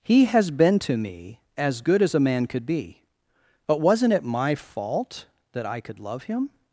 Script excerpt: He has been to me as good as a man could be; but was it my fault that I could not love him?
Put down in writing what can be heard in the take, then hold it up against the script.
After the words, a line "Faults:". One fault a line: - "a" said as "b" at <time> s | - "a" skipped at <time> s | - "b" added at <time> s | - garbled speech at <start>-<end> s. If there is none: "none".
He has been to me as good as a man could be; but wasn't it my fault that I could love him?
Faults:
- "was" said as "wasn't" at 3.8 s
- "not" skipped at 6.0 s